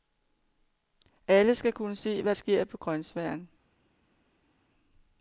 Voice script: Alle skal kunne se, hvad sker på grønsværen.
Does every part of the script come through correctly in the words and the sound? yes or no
yes